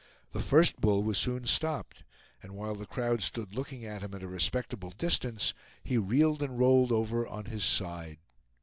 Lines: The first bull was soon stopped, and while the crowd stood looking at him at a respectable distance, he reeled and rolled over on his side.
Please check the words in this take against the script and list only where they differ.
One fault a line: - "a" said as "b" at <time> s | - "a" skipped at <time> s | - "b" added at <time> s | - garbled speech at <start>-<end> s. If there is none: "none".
none